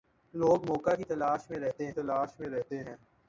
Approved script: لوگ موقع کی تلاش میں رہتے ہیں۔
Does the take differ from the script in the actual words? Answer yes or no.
yes